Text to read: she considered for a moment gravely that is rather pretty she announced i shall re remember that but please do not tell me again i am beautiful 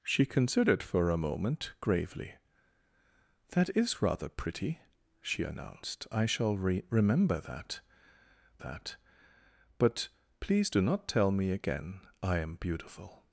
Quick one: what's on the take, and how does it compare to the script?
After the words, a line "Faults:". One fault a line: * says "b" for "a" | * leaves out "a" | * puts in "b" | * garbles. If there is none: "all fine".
she considered for a moment gravely that is rather pretty she announced i shall re remember that that but please do not tell me again i am beautiful
Faults:
* puts in "that"